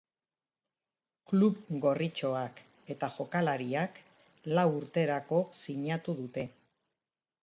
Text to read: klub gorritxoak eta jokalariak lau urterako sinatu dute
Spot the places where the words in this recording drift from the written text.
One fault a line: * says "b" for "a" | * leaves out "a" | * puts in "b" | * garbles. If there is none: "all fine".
all fine